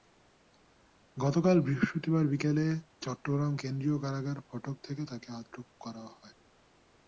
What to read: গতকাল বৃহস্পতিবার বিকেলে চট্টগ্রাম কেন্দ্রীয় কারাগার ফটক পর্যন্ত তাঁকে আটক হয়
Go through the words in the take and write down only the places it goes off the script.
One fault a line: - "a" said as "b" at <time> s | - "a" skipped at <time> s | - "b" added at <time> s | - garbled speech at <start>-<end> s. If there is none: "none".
- "পর্যন্ত" said as "থেকে" at 4.8 s
- "করা" added at 5.8 s